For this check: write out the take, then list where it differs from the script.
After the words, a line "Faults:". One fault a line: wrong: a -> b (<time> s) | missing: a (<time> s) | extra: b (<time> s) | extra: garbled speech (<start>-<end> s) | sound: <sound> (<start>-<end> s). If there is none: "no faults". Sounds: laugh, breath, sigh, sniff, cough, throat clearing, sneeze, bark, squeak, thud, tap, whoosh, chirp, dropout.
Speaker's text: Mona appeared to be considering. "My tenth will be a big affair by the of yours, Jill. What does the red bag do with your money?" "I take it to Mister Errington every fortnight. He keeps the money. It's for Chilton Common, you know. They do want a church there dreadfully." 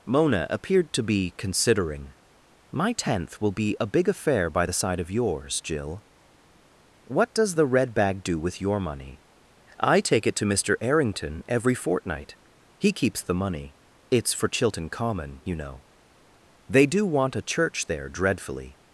Mona appeared to be considering. "My tenth will be a big affair by the side of yours, Jill. What does the red bag do with your money?" "I take it to Mister Errington every fortnight. He keeps the money. It's for Chilton Common, you know. They do want a church there dreadfully."
Faults:
extra: side (4.7 s)